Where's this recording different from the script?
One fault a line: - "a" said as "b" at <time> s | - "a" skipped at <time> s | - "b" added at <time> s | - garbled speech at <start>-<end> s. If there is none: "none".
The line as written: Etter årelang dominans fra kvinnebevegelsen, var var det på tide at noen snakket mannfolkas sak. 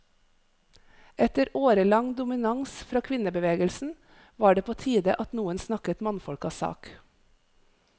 - "var" skipped at 4.5 s